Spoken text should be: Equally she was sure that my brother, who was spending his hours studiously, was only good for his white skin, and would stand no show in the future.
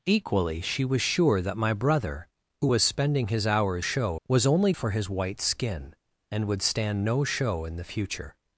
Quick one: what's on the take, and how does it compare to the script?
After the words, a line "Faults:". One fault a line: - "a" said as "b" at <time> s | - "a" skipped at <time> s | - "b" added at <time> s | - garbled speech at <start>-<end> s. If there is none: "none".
Equally she was sure that my brother, who was spending his hours show, was only for his white skin, and would stand no show in the future.
Faults:
- "studiously" said as "show" at 3.8 s
- "good" skipped at 4.7 s